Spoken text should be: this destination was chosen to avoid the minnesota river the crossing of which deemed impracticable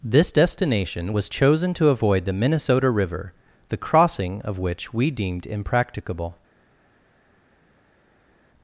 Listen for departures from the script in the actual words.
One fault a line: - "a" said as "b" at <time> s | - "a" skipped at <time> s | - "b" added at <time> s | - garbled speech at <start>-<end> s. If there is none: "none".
- "we" added at 4.9 s